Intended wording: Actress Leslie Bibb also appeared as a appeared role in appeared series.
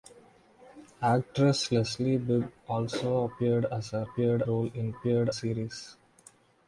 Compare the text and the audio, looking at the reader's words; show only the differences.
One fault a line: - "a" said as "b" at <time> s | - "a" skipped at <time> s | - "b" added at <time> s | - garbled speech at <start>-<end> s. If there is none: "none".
none